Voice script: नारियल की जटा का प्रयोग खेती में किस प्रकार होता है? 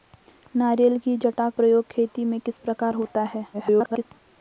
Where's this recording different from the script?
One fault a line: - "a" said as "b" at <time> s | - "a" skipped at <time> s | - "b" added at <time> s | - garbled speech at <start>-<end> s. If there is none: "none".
- "का" skipped at 1.5 s
- garbled speech at 3.5-4.1 s